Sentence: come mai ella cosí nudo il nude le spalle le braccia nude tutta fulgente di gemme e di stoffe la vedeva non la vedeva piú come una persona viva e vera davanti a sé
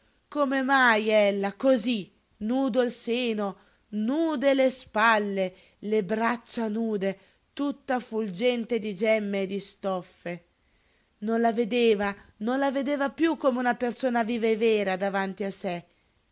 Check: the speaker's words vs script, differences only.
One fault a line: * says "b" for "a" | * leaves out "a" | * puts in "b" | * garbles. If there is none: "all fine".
* puts in "seno"
* puts in "non"